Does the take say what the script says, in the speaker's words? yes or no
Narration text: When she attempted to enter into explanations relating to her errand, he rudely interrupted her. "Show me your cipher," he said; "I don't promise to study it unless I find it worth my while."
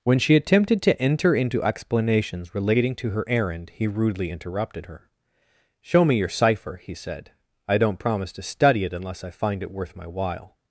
yes